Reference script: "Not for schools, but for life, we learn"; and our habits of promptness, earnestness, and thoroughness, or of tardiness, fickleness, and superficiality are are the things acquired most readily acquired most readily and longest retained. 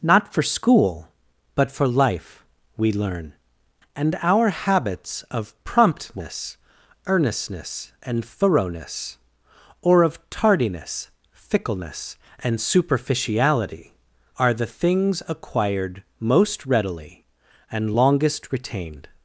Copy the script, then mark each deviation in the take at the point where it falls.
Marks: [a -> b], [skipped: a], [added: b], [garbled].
"Not for [schools, -> school] but for life, we learn"; and our habits of promptness, earnestness, and thoroughness, or of tardiness, fickleness, and superficiality are [skipped: are] the things acquired most readily [skipped: acquired most readily] and longest retained.